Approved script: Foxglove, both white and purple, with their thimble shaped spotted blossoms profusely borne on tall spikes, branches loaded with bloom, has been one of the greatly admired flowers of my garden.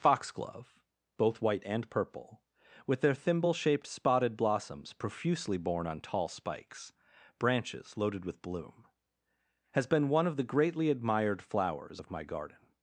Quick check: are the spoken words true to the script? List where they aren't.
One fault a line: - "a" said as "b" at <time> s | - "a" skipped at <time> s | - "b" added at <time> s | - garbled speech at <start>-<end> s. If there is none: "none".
none